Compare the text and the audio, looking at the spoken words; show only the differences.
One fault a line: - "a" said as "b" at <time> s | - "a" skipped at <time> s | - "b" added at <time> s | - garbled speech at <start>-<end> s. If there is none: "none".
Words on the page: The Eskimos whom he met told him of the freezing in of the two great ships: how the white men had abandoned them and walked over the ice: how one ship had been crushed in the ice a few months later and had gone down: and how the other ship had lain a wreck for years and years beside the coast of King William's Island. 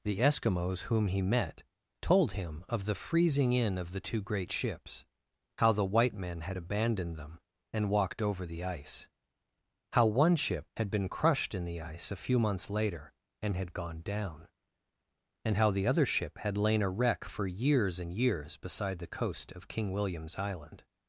none